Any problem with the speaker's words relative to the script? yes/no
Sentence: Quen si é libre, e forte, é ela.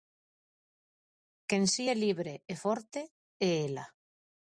no